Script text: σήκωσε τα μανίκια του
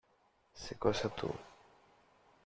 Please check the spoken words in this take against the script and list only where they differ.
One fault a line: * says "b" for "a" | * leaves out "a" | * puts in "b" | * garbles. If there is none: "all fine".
* leaves out "τα μανίκια"